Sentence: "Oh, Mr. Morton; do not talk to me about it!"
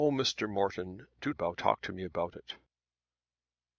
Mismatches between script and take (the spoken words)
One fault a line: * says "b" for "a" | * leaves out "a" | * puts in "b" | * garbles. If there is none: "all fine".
* says "about" for "not"